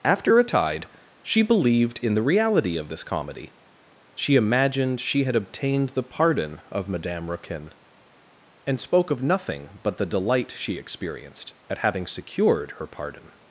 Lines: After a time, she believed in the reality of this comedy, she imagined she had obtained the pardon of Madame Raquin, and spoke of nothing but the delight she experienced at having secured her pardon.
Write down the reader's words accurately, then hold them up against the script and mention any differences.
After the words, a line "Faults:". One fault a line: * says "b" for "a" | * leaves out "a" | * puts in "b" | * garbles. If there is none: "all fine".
After a tide, she believed in the reality of this comedy, she imagined she had obtained the pardon of Madame Raquin, and spoke of nothing but the delight she experienced at having secured her pardon.
Faults:
* says "tide" for "time"